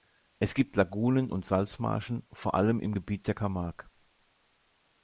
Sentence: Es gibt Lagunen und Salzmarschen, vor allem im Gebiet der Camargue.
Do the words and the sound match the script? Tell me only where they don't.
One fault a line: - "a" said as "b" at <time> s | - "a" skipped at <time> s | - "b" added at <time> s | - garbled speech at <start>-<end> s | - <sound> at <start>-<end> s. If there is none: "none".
none